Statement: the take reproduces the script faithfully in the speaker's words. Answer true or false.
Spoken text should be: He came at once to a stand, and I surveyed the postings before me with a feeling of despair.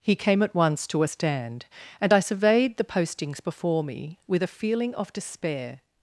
true